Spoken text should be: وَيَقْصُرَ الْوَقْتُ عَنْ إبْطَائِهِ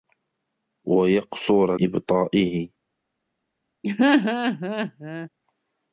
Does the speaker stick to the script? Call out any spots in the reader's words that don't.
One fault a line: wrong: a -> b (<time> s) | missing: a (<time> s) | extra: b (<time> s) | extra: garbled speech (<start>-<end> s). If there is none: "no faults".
missing: الْوَقْتُ عَنْ (1.8 s)